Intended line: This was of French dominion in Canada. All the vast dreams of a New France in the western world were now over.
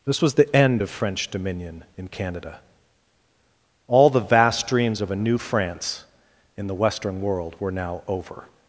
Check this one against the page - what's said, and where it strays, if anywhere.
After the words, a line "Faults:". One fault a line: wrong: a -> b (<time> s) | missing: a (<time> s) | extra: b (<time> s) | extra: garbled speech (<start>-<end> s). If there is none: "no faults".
This was the end of French dominion in Canada. All the vast dreams of a New France in the western world were now over.
Faults:
extra: the end (0.3 s)